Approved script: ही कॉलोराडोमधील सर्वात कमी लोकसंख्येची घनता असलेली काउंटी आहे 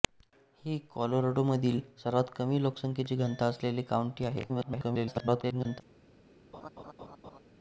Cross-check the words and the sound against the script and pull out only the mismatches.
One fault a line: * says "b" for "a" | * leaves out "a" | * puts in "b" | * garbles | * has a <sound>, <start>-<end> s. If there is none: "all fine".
* garbles
* has a laugh, 6.5-7.4 s